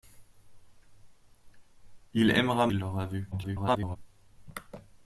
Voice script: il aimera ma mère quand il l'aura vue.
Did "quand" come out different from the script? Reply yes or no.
yes